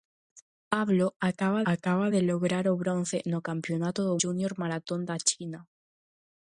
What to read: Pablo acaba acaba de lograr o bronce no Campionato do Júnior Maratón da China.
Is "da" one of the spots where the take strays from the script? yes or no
no